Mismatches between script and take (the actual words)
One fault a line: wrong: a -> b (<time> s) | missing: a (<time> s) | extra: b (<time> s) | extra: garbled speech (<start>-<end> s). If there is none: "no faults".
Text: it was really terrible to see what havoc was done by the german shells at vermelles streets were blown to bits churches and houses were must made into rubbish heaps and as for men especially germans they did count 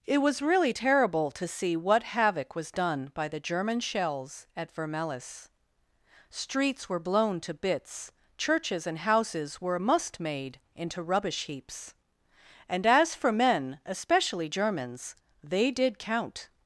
no faults